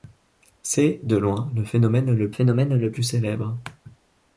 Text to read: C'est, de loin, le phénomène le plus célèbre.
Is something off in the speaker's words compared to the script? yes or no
yes